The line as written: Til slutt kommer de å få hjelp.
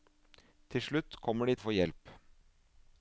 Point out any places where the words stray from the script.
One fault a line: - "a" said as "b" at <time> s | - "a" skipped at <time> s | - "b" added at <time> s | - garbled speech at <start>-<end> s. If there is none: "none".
none